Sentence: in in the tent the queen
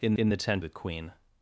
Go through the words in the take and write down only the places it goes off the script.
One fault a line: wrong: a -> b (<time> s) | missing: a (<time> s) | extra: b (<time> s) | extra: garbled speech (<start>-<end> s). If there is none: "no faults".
no faults